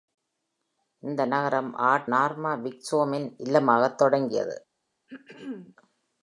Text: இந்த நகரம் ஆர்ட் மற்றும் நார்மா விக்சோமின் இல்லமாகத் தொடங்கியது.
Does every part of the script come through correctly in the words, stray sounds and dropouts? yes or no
no